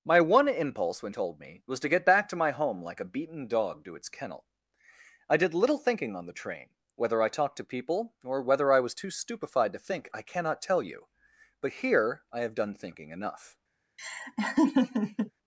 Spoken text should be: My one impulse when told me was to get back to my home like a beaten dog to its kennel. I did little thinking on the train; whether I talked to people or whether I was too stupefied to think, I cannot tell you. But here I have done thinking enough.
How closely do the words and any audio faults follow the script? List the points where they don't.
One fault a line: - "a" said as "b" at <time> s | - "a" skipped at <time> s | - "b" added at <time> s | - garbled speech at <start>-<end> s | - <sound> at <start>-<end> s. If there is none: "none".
- laugh at 14.0-15.3 s